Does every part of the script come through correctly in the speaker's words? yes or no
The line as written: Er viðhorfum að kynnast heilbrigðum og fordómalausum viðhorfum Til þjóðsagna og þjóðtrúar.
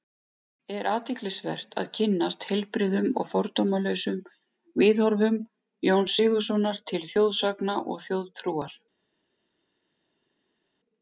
no